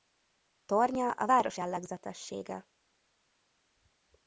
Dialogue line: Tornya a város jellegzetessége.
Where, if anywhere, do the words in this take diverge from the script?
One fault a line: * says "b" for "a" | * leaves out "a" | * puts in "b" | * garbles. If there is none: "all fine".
all fine